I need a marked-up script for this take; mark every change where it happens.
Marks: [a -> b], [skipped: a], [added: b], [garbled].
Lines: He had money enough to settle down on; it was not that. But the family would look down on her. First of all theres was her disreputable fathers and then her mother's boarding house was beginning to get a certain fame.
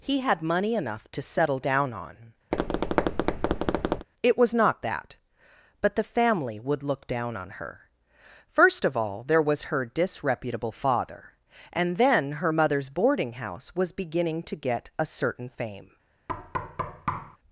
He had money enough to settle down on; it was not that. But the family would look down on her. First of all [theres -> there] was her disreputable [fathers -> father] and then her mother's boarding house was beginning to get a certain fame.